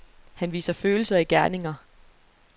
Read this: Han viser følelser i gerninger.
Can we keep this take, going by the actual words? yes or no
yes